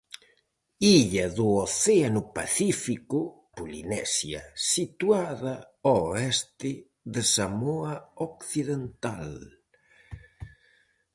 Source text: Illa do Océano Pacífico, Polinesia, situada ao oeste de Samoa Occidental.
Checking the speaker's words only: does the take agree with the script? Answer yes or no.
yes